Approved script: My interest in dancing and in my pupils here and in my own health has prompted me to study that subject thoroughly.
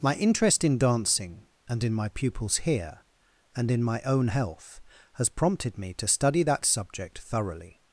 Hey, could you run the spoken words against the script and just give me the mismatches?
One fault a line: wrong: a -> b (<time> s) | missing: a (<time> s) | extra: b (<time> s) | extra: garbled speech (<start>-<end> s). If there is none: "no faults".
no faults